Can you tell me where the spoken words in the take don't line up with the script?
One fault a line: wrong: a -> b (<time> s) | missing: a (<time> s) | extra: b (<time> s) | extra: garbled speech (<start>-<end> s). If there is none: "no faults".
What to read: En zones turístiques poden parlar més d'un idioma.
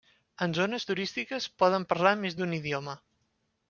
no faults